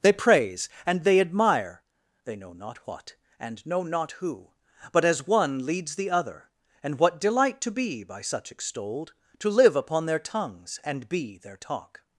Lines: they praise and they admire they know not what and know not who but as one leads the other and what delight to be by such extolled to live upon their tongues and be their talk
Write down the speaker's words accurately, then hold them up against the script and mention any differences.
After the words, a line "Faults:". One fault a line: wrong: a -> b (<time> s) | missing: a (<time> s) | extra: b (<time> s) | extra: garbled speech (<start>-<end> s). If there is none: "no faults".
they praise and they admire they know not what and know not who but as one leads the other and what delight to be by such extolled to live upon their tongues and be their talk
Faults:
no faults